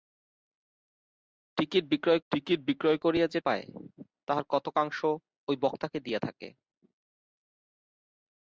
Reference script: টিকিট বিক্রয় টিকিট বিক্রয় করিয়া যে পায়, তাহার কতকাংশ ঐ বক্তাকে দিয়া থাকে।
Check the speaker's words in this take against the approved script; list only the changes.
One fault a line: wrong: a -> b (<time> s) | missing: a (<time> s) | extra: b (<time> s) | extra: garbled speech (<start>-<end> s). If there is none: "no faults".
no faults